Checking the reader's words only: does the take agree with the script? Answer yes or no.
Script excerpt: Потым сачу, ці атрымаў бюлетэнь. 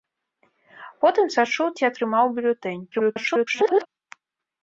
no